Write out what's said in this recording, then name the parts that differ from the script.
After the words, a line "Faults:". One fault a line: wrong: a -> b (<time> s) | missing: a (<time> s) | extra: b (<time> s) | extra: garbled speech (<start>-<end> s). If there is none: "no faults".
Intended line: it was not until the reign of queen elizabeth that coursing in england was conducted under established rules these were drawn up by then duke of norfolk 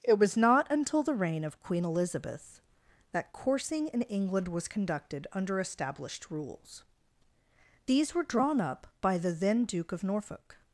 it was not until the reign of queen elizabeth that coursing in england was conducted under established rules these were drawn up by the then duke of norfolk
Faults:
extra: the (9.2 s)